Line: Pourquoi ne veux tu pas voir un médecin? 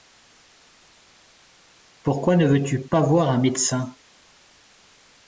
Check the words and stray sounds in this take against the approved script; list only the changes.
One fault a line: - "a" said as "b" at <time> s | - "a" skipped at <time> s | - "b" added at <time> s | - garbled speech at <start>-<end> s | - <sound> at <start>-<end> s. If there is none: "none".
none